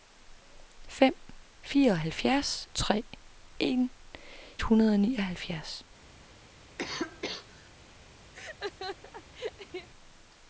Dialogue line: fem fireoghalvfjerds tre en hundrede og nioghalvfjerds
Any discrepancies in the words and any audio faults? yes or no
yes